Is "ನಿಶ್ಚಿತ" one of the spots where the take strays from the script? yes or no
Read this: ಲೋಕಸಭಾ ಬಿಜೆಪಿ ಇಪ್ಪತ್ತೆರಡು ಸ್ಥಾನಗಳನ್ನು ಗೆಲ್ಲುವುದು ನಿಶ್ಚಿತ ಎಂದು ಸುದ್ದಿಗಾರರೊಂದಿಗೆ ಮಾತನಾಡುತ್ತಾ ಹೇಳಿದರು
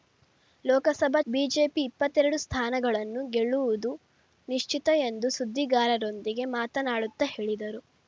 no